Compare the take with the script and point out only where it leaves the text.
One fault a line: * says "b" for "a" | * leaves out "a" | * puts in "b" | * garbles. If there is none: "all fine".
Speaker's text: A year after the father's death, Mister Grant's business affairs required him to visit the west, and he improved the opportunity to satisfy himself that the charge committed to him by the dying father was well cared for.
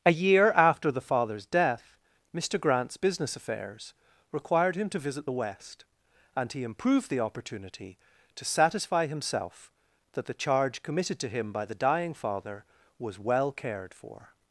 all fine